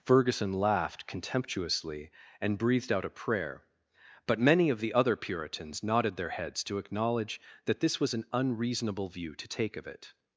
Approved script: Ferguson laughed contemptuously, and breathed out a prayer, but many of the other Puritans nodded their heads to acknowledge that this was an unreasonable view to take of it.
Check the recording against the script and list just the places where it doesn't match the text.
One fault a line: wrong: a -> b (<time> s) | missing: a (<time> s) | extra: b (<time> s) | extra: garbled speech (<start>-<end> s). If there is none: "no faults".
no faults